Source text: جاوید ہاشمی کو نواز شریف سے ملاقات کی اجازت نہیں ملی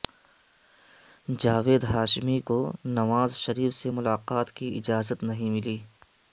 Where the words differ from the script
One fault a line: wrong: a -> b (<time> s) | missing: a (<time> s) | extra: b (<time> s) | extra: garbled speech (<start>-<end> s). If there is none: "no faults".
no faults